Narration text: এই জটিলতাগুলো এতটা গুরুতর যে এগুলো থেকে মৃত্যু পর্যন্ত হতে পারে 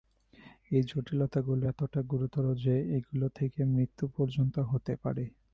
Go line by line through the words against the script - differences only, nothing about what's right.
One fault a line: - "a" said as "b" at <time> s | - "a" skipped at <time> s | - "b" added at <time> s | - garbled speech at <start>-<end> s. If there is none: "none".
none